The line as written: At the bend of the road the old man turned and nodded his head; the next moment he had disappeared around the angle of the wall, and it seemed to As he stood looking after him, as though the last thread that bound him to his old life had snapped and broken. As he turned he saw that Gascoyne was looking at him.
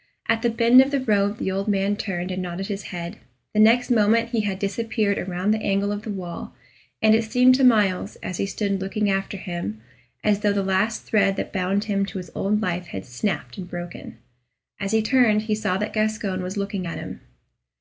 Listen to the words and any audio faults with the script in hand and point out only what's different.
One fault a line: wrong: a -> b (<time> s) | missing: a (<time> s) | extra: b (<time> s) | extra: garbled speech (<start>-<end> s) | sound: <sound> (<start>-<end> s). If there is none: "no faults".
extra: Myles (7.6 s)